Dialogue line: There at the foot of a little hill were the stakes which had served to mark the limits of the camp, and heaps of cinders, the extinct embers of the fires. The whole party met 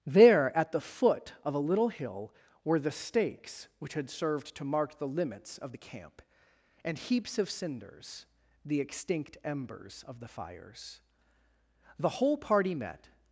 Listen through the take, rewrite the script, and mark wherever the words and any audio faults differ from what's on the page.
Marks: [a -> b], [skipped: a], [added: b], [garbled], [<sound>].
There at the foot of a little hill were the stakes which had served to mark the limits of the camp, and heaps of cinders, the extinct embers of the fires. The whole party met